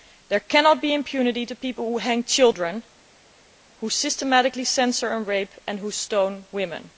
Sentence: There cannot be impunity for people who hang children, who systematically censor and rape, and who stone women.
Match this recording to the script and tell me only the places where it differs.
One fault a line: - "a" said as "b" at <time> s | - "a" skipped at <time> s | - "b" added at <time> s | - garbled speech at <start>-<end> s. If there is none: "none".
none